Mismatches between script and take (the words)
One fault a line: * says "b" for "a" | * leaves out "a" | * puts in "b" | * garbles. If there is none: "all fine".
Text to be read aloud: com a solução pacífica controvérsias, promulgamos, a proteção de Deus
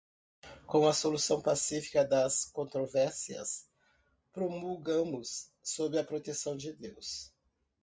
* puts in "das"
* puts in "sob"